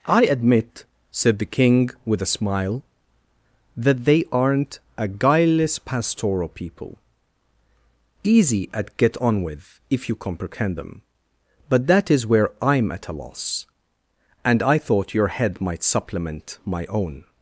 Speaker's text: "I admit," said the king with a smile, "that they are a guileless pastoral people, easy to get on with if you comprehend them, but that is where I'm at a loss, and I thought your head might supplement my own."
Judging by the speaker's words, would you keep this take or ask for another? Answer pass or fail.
fail